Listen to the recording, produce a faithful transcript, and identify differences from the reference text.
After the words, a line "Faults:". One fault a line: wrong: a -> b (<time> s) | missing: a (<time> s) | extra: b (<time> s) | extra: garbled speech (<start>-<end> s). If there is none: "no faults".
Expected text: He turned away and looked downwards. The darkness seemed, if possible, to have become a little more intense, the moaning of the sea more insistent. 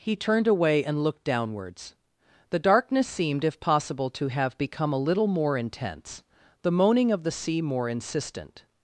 He turned away and looked downwards. The darkness seemed, if possible, to have become a little more intense, the moaning of the sea more insistent.
Faults:
no faults